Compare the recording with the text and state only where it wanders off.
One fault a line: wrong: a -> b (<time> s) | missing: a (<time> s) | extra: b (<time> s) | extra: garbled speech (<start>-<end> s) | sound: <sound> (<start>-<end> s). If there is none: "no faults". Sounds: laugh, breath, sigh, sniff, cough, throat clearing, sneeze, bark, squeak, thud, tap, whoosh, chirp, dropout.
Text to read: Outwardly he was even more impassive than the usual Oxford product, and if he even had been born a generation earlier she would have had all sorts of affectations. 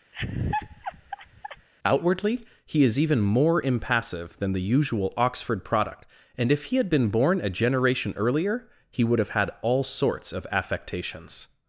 sound: laugh (0.1-1.7 s)
wrong: was -> is (2.8 s)
missing: even (6.8 s)
wrong: she -> he (8.9 s)